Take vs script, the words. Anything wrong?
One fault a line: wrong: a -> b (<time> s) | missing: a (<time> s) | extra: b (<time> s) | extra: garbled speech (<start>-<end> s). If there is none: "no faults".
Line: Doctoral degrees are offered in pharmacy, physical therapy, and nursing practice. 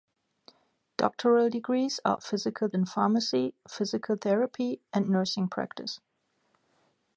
wrong: offered -> physical (2.2 s)